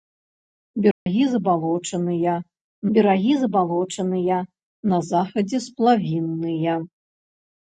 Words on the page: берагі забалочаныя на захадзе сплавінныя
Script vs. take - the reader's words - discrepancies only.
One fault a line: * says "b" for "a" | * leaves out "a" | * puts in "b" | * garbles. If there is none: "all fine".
* puts in "берагі забалочаныя"